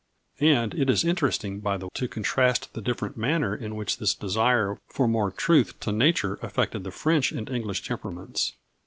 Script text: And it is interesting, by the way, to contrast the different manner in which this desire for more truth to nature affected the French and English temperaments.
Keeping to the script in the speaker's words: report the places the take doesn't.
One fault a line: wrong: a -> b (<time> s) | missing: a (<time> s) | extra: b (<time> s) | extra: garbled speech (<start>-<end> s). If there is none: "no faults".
missing: way (1.9 s)